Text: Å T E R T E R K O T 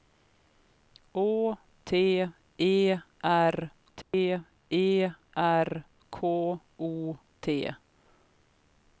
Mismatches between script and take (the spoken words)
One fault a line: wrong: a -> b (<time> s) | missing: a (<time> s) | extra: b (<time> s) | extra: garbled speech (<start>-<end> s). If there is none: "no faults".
no faults